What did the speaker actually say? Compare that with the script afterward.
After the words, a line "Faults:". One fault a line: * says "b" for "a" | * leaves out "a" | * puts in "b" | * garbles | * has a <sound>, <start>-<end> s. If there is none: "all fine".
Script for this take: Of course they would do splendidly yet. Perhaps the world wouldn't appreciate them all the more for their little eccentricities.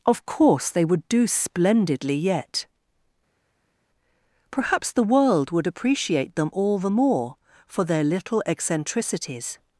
Of course they would do splendidly yet. Perhaps the world would appreciate them all the more for their little eccentricities.
Faults:
* says "would" for "wouldn't"